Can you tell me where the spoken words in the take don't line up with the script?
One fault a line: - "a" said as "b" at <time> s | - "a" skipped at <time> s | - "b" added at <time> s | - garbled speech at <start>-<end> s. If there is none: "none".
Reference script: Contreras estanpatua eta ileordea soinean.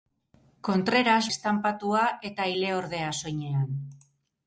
none